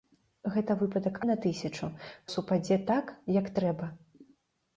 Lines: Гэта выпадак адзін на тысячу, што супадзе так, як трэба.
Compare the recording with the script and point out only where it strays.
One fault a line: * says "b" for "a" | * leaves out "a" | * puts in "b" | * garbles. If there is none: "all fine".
* leaves out "адзін"
* leaves out "што"